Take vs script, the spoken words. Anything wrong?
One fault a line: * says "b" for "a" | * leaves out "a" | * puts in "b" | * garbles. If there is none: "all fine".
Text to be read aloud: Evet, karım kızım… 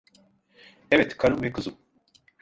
* puts in "ve"